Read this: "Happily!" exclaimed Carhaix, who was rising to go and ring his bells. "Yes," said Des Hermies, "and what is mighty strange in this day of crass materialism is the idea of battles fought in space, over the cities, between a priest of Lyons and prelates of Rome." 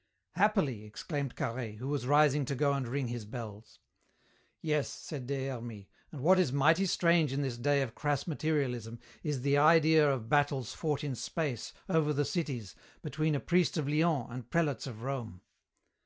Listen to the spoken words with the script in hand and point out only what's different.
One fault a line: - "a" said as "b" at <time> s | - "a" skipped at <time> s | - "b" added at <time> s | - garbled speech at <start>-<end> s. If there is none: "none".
none